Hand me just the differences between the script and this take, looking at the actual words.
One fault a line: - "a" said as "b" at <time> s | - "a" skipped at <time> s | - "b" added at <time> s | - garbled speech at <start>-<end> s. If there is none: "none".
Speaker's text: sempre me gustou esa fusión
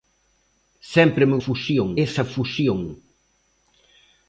- "gustou" said as "fusión" at 1.4 s